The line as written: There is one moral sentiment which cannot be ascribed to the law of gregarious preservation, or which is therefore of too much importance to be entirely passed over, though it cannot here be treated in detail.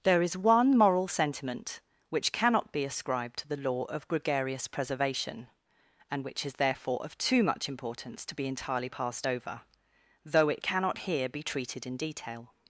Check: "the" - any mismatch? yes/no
no